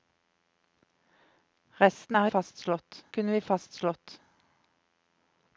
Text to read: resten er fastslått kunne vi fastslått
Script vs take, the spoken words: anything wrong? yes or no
no